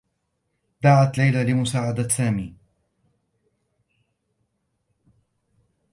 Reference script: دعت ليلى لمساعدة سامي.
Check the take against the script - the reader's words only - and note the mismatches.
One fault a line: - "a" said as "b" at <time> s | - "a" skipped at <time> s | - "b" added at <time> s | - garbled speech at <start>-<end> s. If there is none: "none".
none